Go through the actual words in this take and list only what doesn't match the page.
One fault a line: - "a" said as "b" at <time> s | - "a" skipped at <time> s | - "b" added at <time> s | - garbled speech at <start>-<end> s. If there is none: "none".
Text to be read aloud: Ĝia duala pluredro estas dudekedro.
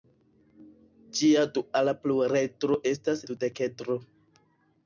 none